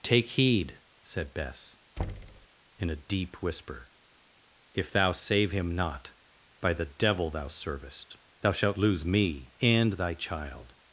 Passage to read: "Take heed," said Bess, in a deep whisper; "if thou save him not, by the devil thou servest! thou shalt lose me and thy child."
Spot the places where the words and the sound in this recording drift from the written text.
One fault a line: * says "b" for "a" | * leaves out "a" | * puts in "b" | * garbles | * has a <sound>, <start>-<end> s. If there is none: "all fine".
* has a thud, 2.0-2.5 s